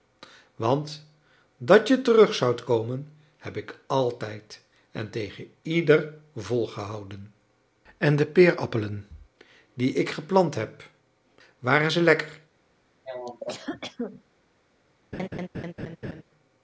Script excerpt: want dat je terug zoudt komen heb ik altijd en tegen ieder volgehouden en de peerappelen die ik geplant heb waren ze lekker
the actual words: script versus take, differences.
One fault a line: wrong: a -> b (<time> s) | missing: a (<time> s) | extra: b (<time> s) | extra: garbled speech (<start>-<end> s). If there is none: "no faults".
no faults